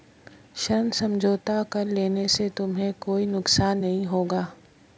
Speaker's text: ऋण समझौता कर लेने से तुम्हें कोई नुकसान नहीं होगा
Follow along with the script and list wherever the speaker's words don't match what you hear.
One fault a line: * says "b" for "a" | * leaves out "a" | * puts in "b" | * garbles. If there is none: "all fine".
all fine